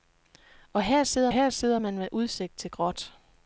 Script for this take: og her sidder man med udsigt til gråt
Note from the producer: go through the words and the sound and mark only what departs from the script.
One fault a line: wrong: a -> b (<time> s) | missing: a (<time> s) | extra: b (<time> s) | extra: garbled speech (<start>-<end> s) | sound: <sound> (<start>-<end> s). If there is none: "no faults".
extra: her sidder (1.3 s)